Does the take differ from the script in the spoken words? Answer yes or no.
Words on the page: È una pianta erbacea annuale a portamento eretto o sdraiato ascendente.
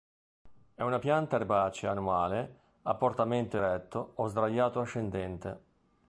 no